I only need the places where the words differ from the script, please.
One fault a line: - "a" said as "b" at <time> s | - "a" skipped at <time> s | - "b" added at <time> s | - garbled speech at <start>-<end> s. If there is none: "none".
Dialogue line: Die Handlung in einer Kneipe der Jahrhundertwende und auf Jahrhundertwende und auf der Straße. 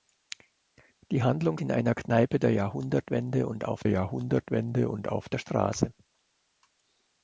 none